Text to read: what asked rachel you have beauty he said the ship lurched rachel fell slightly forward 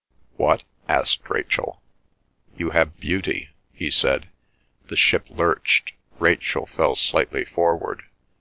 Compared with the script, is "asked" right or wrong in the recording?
right